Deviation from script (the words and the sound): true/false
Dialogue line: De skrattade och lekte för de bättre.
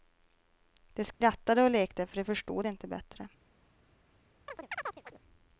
true